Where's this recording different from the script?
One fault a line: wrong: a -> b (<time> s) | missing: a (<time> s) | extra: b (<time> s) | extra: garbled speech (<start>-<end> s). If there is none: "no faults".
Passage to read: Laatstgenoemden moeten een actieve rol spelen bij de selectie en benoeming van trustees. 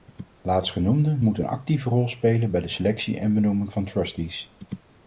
no faults